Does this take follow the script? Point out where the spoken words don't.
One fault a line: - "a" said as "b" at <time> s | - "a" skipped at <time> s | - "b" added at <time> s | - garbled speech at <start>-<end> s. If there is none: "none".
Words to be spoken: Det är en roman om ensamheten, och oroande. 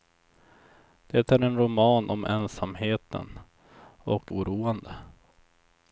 none